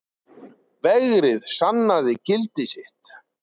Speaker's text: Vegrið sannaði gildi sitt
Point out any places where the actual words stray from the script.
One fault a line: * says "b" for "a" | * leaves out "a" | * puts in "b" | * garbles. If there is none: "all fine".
all fine